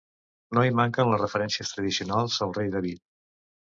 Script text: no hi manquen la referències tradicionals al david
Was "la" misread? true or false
true